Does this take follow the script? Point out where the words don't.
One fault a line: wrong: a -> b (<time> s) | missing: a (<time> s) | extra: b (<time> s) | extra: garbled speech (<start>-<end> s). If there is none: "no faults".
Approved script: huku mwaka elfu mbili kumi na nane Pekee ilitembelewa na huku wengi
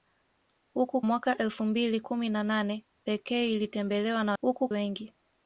no faults